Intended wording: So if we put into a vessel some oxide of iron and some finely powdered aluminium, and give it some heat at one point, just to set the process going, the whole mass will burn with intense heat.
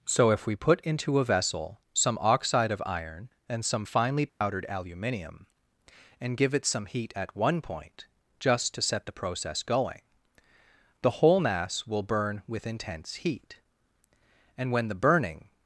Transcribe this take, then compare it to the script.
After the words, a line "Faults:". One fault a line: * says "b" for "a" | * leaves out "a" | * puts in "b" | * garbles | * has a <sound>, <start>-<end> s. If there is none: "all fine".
So if we put into a vessel some oxide of iron and some finely powdered aluminium, and give it some heat at one point, just to set the process going, the whole mass will burn with intense heat. And when the burning
Faults:
* has a dropout, 4.3-4.4 s
* puts in "And when the burning"